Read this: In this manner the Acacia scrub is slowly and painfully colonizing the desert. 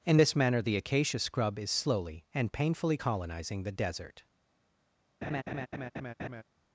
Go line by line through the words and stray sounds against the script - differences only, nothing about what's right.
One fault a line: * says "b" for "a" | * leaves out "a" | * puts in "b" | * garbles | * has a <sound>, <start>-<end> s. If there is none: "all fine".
* has a laugh, 5.2-6.4 s